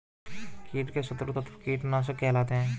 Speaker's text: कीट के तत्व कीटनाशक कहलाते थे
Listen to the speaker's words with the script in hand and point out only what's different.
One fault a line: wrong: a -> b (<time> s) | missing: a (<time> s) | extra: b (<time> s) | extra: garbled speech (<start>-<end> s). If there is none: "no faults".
extra: शत्रु (1.0 s)
wrong: थे -> हैं (2.5 s)